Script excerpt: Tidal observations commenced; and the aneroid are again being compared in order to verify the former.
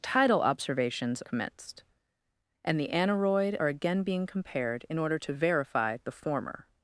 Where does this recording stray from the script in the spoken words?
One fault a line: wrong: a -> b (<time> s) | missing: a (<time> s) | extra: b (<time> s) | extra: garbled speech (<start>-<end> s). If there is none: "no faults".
no faults